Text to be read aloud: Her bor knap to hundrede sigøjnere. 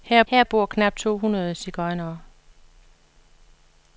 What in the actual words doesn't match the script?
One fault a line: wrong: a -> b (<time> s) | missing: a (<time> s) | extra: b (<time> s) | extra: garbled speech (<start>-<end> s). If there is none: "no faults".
extra: her (0.2 s)